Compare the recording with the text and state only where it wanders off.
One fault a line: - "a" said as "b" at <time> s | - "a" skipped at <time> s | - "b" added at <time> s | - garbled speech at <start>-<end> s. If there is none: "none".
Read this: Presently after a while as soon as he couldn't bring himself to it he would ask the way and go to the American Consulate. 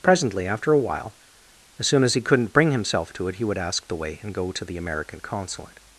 none